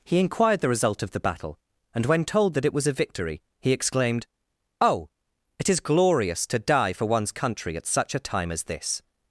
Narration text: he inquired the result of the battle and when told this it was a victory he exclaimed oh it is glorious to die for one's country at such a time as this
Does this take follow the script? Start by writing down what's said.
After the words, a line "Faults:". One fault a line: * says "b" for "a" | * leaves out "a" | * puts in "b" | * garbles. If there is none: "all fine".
he inquired the result of the battle and when told that it was a victory he exclaimed oh it is glorious to die for one's country at such a time as this
Faults:
* says "that" for "this"